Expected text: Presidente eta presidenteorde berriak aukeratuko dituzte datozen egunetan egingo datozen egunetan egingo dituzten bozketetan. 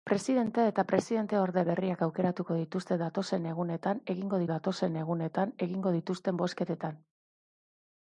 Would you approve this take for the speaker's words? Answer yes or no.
yes